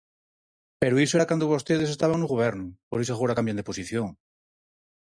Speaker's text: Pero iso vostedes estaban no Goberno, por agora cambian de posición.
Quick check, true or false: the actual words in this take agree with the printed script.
false